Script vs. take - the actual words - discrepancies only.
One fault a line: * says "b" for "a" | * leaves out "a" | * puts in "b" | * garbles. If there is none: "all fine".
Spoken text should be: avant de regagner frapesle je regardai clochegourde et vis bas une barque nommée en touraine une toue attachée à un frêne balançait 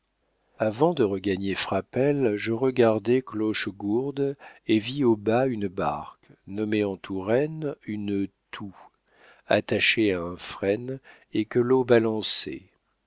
* puts in "au"
* puts in "et que l'eau"